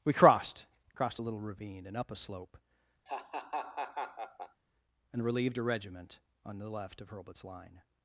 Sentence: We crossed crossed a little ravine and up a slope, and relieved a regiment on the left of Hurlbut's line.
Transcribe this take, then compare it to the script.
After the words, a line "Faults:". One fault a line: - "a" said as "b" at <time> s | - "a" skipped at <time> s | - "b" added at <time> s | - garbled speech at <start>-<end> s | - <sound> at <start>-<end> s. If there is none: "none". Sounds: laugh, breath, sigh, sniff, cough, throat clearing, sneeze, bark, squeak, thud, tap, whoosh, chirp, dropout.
We crossed crossed a little ravine and up a slope, and relieved a regiment on the left of Hurlbut's line.
Faults:
- laugh at 3.1-4.6 s